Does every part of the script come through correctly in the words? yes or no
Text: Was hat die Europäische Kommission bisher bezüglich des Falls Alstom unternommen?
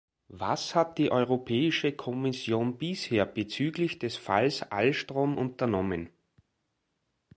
yes